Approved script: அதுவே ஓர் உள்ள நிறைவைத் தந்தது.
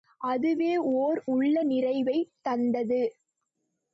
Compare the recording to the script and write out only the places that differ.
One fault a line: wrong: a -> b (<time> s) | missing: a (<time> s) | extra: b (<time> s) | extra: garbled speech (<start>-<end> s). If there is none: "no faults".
no faults